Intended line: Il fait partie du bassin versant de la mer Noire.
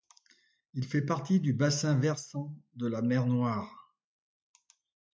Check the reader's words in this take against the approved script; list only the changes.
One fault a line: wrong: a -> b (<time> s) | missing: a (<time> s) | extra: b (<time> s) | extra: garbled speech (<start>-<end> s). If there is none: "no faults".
no faults